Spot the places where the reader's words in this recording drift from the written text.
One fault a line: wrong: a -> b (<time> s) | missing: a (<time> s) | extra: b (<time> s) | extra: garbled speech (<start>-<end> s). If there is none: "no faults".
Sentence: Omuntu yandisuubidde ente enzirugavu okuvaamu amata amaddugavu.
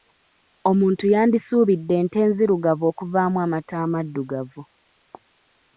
no faults